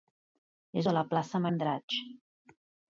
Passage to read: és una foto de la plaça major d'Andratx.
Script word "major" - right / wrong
wrong